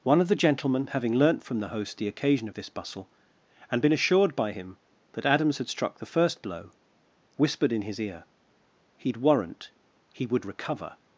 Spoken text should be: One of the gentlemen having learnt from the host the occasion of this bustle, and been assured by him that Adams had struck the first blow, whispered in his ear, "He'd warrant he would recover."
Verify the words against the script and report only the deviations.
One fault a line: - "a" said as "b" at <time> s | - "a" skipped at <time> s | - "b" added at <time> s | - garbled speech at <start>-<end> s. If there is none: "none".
none